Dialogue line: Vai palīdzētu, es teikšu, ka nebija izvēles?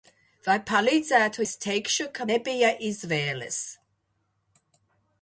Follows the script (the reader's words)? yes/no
yes